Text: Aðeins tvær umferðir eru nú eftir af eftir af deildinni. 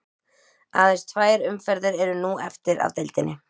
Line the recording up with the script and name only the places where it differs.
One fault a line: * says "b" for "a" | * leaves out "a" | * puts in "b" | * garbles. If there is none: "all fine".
* leaves out "eftir af"